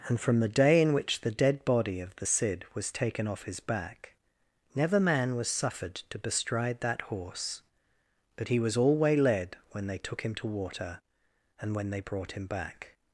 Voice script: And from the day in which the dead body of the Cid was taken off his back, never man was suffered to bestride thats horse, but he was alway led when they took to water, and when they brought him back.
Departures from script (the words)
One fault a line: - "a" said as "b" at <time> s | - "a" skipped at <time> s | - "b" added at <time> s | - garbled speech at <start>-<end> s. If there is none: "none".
- "thats" said as "that" at 6.8 s
- "him" added at 10.2 s